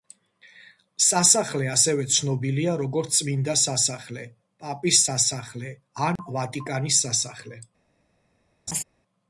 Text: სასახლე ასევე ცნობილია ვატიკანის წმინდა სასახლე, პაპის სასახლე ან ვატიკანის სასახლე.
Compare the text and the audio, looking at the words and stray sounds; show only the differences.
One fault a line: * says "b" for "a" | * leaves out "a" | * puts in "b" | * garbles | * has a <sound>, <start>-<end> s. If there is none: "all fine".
* says "როგორც" for "ვატიკანის"
* has a dropout, 6.2-6.2 s
* has a laugh, 8.7-8.8 s